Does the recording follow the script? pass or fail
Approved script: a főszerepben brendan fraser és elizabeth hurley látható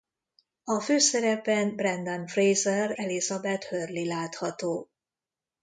fail